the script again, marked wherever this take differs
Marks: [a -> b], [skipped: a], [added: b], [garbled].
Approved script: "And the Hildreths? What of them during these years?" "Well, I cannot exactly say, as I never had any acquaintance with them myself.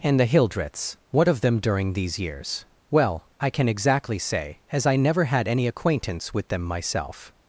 "And the Hildreths? What of them during these years?" "Well, I [cannot -> can] exactly say, as I never had any acquaintance with them myself.